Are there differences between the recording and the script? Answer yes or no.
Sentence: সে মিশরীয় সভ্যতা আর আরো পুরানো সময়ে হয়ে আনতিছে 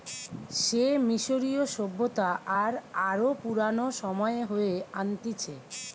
no